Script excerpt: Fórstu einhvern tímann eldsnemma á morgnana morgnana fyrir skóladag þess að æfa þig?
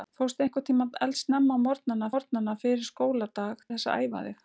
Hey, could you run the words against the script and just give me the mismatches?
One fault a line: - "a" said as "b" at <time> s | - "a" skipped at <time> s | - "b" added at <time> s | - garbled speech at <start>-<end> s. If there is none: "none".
none